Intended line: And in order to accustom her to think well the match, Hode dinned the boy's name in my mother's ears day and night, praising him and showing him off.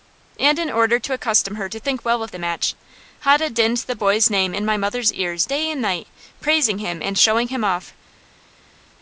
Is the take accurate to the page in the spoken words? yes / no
no